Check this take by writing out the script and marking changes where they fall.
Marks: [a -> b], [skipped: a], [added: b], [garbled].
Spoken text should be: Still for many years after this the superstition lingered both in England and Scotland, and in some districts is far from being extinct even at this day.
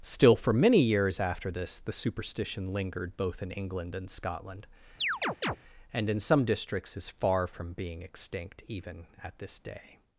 Still for many years after this the superstition lingered both in England and Scotland, and in some districts is far from being extinct even at this day.